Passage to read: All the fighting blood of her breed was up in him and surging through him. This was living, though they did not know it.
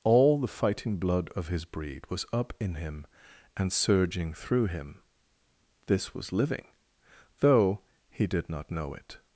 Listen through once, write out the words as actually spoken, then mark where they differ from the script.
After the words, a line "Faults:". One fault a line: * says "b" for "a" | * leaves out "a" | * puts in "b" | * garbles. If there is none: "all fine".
All the fighting blood of his breed was up in him and surging through him. This was living, though he did not know it.
Faults:
* says "his" for "her"
* says "he" for "they"